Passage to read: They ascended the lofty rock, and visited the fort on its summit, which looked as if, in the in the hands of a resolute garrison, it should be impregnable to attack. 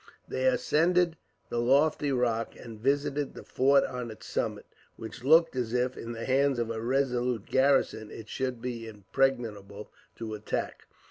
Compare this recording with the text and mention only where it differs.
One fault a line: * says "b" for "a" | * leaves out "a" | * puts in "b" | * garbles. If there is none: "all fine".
* leaves out "in the"